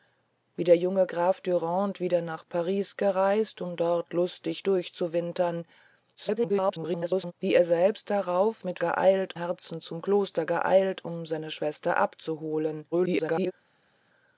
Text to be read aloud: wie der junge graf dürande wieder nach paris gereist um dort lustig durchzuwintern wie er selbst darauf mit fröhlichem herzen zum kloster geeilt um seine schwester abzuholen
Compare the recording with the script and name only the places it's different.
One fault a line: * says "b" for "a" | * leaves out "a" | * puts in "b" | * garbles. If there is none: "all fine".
* garbles
* says "geeilt" for "fröhlichem"
* garbles